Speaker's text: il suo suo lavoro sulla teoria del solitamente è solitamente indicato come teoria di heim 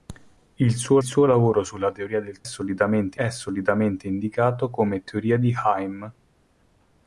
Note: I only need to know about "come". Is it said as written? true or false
true